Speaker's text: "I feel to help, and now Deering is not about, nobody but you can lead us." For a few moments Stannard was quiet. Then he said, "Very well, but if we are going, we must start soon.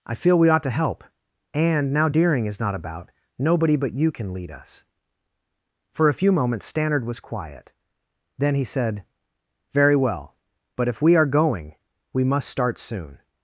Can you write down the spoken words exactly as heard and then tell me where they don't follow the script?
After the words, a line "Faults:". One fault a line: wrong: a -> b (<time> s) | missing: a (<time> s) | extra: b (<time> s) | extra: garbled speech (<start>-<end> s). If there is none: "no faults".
"I feel we ought to help, and now Deering is not about, nobody but you can lead us." For a few moments Stannard was quiet. Then he said, "Very well, but if we are going, we must start soon.
Faults:
extra: we ought (0.4 s)